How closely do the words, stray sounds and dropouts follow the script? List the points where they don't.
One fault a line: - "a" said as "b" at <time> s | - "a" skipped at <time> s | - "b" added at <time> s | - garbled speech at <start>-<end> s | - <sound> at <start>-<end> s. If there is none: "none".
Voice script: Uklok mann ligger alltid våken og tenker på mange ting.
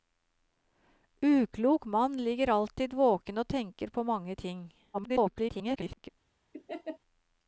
- garbled speech at 4.9-6.1 s
- laugh at 6.5-7.0 s